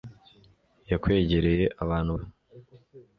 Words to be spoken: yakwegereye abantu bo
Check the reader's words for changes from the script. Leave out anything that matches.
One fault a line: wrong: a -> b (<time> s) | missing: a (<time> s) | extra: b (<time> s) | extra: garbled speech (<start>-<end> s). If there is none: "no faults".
no faults